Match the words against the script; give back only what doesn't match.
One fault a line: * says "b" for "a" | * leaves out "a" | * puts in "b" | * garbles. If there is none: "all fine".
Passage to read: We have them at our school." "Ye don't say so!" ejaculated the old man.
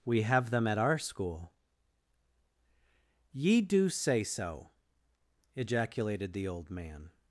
* says "do" for "don't"